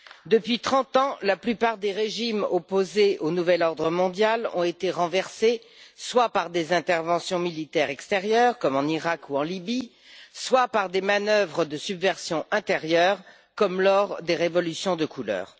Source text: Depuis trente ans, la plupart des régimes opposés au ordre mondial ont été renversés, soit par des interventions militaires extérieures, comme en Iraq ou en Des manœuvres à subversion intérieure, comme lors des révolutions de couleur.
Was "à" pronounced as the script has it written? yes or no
no